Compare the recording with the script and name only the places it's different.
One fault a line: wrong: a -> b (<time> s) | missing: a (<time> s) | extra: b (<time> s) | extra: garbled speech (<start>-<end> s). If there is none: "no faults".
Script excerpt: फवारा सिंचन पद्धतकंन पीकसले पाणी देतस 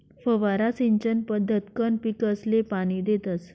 no faults